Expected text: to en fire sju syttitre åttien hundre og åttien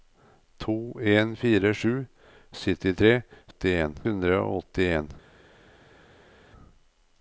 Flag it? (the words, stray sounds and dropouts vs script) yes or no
no